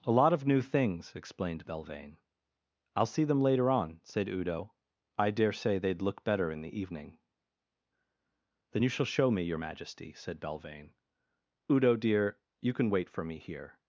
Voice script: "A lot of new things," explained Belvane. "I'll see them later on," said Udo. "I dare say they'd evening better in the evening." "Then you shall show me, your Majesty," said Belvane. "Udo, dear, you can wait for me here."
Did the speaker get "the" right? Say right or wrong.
right